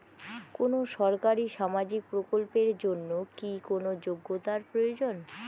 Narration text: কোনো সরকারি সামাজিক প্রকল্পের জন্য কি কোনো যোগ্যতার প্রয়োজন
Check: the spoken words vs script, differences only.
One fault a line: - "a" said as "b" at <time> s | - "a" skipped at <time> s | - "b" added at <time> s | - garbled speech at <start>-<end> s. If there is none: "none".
none